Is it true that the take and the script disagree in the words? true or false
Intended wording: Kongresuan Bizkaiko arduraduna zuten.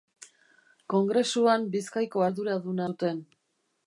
false